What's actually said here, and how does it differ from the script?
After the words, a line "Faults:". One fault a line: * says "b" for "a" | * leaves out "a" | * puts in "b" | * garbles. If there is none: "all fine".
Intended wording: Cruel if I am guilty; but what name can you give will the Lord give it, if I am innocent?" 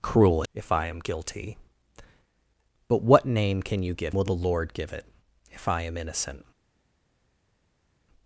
Cruel if I am guilty; but what name can you give will the Lord give it, if I am innocent?"
Faults:
all fine